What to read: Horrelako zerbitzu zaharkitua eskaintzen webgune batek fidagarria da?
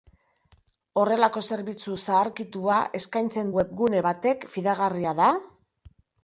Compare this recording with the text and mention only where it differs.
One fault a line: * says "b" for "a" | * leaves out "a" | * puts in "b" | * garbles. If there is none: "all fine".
all fine